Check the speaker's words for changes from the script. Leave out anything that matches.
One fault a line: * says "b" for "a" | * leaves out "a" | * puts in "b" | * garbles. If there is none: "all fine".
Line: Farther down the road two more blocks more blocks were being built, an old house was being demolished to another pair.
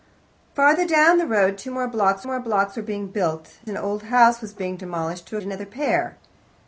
all fine